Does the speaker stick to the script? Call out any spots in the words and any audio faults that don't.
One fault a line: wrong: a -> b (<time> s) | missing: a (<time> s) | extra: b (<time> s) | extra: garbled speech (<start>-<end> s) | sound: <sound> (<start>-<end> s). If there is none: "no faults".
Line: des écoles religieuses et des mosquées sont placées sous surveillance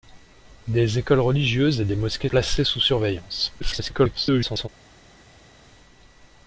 missing: sont (2.3 s)
extra: garbled speech (3.6-4.7 s)